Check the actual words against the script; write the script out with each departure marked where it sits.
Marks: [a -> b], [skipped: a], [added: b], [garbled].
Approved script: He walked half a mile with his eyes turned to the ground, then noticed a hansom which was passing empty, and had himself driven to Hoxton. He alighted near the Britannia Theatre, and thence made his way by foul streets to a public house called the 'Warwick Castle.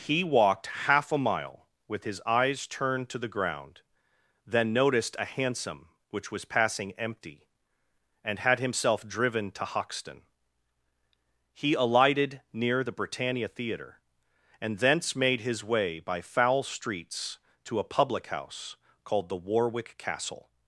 He walked half a mile with his eyes turned to the ground, then noticed a hansom which was passing empty, and had himself driven to Hoxton. He alighted near the Britannia Theatre, and thence made his way by foul streets to a public house called the 'Warwick Castle.